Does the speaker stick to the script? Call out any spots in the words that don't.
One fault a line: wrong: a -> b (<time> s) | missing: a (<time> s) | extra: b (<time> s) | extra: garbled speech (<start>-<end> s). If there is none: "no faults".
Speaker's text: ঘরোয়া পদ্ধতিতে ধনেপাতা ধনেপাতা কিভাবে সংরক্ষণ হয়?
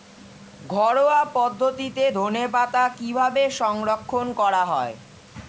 missing: ধনেপাতা (2.8 s)
extra: করা (4.4 s)